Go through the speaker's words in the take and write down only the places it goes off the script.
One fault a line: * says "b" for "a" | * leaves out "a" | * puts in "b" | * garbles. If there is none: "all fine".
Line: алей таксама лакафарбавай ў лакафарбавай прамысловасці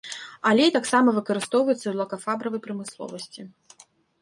* says "выкарыстоўваецца" for "лакафарбавай"